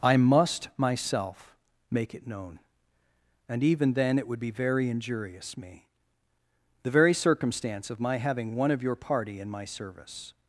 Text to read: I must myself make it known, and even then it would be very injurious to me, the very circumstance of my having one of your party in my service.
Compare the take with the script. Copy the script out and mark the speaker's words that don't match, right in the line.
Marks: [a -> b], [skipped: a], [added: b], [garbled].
I must myself make it known, and even then it would be very injurious [skipped: to] me, the very circumstance of my having one of your party in my service.